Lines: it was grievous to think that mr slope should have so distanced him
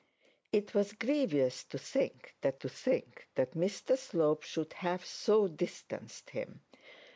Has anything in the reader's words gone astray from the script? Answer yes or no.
yes